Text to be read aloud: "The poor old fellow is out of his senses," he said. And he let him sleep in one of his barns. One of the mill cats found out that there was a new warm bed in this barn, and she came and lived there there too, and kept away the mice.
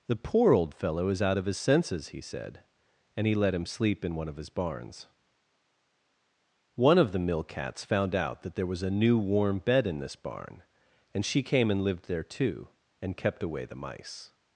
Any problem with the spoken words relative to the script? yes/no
yes